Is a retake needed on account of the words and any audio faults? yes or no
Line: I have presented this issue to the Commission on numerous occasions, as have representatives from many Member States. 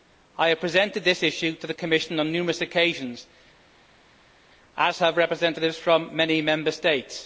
no